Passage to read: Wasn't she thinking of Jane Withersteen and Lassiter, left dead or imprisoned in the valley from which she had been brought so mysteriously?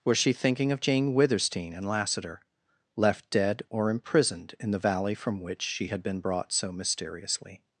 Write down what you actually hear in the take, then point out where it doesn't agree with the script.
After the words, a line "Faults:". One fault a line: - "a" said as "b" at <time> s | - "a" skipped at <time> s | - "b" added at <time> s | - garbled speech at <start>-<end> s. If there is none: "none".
Was she thinking of Jane Withersteen and Lassiter, left dead or imprisoned in the valley from which she had been brought so mysteriously?
Faults:
- "Wasn't" said as "Was" at 0.0 s